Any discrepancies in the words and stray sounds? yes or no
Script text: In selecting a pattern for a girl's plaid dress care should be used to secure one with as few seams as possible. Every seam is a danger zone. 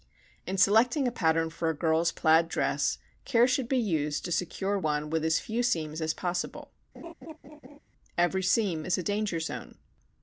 yes